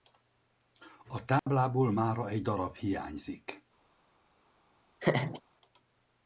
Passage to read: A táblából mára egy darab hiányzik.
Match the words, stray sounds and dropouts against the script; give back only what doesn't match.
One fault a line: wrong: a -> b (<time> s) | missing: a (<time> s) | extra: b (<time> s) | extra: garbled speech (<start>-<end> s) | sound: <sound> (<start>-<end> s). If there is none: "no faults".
sound: dropout (1.4-1.5 s)
sound: laugh (5.0-5.4 s)